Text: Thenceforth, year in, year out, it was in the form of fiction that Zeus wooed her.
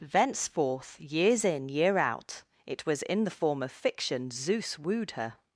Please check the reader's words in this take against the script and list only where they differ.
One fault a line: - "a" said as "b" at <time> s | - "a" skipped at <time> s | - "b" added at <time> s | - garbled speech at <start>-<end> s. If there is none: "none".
- "year" said as "years" at 1.0 s
- "that" skipped at 4.3 s